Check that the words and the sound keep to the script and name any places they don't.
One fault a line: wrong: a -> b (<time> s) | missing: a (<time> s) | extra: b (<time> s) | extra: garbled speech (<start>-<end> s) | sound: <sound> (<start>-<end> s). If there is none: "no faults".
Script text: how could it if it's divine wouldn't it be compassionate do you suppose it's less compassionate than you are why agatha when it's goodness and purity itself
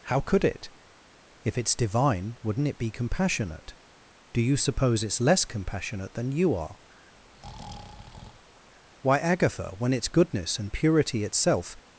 sound: breath (7.1-8.7 s)